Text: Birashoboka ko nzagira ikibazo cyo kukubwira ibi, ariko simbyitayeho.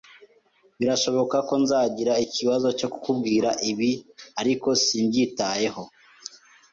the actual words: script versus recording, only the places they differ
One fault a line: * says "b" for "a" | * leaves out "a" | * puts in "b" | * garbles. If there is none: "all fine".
all fine